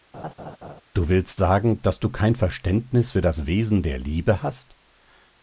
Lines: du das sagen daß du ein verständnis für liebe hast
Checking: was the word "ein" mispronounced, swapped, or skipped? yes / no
yes